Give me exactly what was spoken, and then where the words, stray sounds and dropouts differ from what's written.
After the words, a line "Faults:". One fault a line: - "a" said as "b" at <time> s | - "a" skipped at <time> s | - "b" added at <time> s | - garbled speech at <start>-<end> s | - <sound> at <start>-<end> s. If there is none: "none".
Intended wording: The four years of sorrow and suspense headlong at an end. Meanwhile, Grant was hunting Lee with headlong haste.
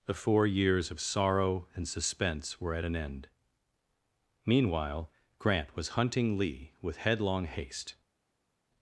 The four years of sorrow and suspense were at an end. Meanwhile, Grant was hunting Lee with headlong haste.
Faults:
- "headlong" said as "were" at 2.6 s